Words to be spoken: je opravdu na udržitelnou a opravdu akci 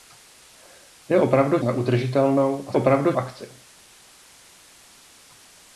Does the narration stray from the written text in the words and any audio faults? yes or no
no